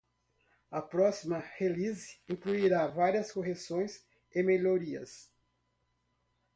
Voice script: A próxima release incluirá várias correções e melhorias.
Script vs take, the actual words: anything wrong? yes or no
no